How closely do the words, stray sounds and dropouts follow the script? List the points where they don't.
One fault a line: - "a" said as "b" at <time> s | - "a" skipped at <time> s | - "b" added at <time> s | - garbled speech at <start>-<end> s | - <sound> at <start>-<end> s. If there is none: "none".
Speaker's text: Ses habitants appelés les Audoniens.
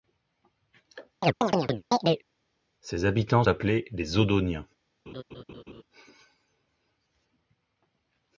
- chirp at 1.2-2.3 s
- laugh at 5.1-5.8 s